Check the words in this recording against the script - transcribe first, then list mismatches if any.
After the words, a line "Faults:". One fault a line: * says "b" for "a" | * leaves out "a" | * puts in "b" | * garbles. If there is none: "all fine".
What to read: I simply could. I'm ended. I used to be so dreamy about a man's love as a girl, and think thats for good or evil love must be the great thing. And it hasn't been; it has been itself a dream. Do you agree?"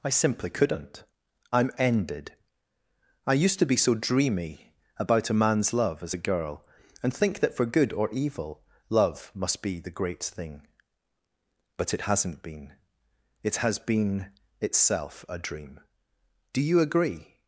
I simply couldn't. I'm ended. I used to be so dreamy about a man's love as a girl, and think that for good or evil love must be the great thing. But it hasn't been; it has been itself a dream. Do you agree?"
Faults:
* says "couldn't" for "could"
* says "that" for "thats"
* says "But" for "And"